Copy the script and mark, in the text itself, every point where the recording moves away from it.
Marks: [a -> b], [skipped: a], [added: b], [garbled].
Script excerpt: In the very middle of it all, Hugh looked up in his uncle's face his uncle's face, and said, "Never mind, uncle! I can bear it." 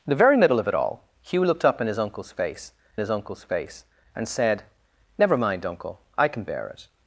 In the very middle of it all, Hugh looked up in his uncle's face his uncle's face, and said, "Never mind, uncle! I can bear it."